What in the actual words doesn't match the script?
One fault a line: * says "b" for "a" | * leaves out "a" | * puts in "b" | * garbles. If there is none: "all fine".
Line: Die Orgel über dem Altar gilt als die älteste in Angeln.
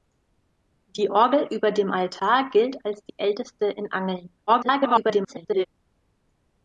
* garbles